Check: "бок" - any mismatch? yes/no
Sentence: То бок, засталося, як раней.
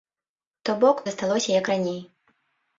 no